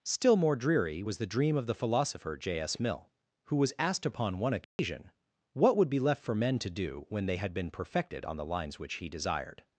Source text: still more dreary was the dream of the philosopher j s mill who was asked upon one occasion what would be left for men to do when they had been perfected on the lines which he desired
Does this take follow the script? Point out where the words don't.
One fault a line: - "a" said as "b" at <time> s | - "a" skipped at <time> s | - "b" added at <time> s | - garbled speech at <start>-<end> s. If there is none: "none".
none